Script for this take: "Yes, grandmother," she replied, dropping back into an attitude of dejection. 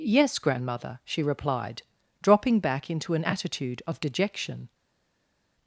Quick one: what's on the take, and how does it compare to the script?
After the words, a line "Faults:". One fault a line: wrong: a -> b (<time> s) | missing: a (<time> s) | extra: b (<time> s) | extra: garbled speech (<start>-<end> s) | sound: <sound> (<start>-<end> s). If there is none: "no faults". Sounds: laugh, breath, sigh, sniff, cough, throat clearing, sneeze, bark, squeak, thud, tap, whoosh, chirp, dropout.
"Yes, grandmother," she replied, dropping back into an attitude of dejection.
Faults:
no faults